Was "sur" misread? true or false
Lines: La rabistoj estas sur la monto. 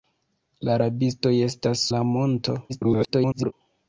true